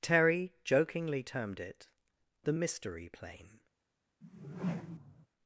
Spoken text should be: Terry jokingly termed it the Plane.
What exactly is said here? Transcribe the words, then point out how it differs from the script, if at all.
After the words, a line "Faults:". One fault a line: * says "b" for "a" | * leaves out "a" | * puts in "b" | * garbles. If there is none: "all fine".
Terry jokingly termed it the Mystery Plane.
Faults:
* puts in "Mystery"